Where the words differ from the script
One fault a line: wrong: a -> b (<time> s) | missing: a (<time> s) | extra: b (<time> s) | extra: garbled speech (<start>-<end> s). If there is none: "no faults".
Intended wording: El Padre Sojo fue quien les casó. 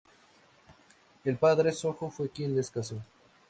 no faults